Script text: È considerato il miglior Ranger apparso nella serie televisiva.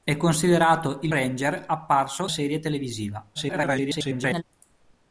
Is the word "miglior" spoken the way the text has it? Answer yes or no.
no